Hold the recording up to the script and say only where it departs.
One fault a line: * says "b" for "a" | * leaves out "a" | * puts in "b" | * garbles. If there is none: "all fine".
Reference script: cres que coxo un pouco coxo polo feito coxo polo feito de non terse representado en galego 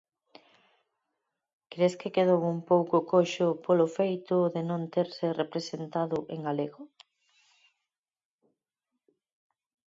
* says "quedou" for "coxo"
* leaves out "coxo polo feito"